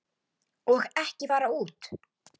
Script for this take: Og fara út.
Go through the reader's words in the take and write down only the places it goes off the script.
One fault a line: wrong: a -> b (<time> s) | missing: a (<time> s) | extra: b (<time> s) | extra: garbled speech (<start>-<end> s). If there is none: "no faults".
extra: ekki (1.0 s)